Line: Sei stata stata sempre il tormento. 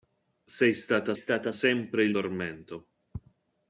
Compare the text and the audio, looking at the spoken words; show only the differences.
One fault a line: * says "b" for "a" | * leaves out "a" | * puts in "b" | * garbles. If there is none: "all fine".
all fine